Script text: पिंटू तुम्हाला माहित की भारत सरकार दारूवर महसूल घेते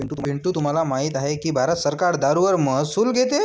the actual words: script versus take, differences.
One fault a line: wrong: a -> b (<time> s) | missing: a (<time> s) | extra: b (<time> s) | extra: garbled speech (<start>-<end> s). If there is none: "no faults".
extra: आहे (1.1 s)